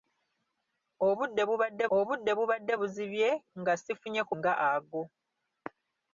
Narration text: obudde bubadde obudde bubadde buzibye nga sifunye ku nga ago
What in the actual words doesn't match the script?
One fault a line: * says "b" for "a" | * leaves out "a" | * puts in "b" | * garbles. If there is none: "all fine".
all fine